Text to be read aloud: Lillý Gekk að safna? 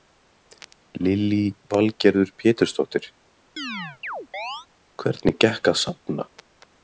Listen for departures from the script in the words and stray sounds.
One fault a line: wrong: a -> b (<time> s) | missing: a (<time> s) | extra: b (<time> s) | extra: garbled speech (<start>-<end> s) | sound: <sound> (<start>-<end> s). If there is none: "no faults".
extra: Valgerður Pétursdóttir Hvernig (1.7 s)
sound: chirp (3.6-4.7 s)